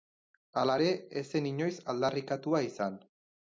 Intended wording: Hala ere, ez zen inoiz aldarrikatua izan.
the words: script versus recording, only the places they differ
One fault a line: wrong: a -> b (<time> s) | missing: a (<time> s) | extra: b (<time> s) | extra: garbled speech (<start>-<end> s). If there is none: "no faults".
no faults